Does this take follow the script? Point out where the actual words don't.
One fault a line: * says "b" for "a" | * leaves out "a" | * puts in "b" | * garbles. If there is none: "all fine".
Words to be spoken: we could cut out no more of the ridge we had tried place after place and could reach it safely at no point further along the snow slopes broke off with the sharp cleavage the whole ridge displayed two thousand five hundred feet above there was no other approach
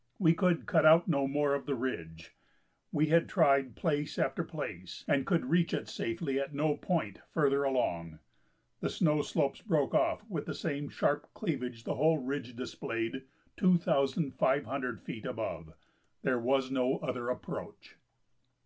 * puts in "same"